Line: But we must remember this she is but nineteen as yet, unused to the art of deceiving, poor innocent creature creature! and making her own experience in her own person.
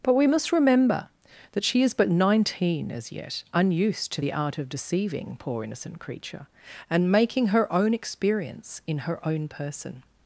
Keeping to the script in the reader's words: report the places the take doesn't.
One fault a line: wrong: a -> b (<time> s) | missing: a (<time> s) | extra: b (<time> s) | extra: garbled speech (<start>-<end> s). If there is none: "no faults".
wrong: this -> that (1.5 s)
missing: creature (6.5 s)